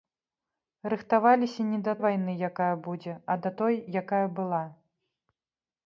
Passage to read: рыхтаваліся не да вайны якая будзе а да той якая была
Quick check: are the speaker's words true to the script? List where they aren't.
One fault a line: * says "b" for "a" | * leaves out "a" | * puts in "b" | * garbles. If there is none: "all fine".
all fine